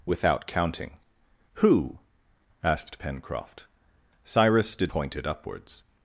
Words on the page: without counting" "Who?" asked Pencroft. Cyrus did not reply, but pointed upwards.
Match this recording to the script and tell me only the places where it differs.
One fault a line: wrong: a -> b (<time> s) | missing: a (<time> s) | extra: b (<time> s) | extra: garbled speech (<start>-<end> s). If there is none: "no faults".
missing: not reply but (4.9 s)